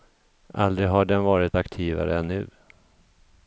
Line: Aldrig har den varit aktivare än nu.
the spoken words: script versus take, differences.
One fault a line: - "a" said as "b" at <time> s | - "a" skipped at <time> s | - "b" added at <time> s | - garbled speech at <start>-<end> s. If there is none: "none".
none